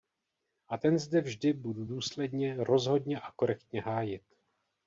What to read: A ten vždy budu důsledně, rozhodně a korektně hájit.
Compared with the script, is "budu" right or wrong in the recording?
right